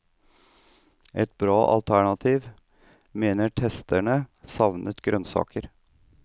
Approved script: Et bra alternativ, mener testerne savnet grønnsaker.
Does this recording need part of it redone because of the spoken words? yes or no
no